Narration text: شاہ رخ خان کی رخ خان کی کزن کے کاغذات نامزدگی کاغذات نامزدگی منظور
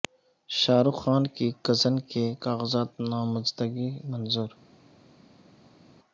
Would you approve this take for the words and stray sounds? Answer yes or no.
no